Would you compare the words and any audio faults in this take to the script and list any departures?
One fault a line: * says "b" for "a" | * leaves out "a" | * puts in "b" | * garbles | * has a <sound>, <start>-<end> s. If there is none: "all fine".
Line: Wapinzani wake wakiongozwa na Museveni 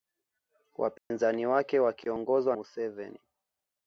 * has a dropout, 1.0-1.1 s
* leaves out "na"